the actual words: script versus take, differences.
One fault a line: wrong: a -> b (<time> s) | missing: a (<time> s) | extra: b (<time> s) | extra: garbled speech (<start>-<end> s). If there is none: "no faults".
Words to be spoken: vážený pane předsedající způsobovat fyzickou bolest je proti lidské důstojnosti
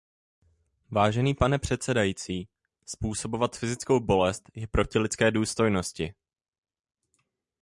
no faults